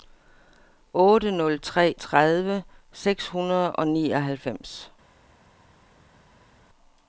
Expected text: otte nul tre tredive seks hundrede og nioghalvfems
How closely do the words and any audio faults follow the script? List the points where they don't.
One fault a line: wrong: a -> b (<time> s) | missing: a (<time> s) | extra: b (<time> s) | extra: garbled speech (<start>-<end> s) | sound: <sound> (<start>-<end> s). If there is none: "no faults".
no faults